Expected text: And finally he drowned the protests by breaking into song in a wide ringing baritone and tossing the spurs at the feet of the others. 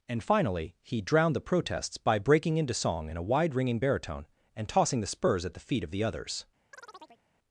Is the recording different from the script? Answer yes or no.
no